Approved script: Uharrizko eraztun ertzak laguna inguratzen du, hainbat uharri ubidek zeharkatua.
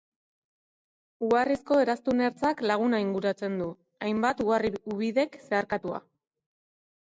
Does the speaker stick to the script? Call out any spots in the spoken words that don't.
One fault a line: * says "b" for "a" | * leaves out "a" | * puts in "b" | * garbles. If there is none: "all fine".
all fine